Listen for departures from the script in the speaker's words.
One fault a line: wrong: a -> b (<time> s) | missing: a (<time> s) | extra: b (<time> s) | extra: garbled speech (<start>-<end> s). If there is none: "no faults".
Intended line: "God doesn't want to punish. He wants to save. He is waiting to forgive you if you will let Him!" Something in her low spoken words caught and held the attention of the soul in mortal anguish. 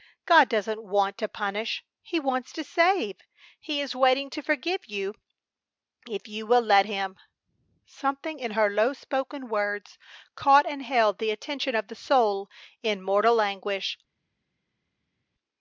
no faults